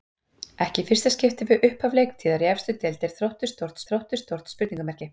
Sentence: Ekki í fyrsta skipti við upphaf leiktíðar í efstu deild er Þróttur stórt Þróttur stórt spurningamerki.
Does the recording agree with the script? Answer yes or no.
yes